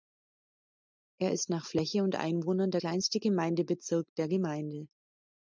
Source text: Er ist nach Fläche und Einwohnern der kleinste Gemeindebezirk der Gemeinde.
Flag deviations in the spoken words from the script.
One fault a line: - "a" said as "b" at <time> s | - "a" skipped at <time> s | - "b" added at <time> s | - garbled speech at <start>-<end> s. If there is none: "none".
none